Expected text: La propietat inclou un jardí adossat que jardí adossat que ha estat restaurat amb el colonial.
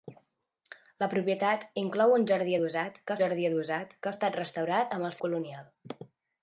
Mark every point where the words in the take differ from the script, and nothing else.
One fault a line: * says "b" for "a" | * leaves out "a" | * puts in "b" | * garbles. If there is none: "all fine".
all fine